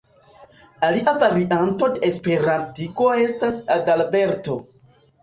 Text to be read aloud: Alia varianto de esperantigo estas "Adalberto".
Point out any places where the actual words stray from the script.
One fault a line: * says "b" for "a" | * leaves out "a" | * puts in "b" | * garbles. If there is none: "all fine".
all fine